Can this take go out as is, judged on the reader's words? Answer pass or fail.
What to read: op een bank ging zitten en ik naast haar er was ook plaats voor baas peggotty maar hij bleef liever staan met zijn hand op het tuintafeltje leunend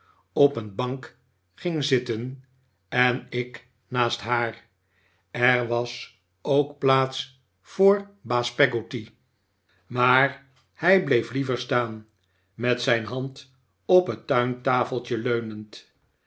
pass